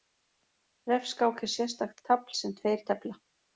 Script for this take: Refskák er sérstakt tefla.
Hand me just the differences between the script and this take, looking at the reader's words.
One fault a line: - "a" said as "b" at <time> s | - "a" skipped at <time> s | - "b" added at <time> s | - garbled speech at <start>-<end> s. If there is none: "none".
- "tafl sem tveir" added at 2.1 s